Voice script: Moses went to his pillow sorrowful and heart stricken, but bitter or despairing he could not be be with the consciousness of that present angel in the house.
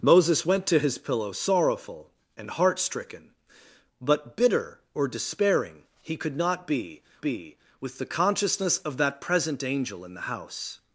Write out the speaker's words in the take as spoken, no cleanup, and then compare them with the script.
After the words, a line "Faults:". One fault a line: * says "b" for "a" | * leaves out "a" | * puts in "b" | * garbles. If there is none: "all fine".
Moses went to his pillow sorrowful and heart stricken, but bitter or despairing he could not be be with the consciousness of that present angel in the house.
Faults:
all fine